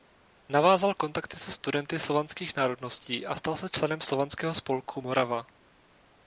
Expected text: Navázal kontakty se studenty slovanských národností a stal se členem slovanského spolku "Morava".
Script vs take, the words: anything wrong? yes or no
no